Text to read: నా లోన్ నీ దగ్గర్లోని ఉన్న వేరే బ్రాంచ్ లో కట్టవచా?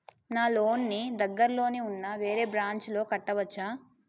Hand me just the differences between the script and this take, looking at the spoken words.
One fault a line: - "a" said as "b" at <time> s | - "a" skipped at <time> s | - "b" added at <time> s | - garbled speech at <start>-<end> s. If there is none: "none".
none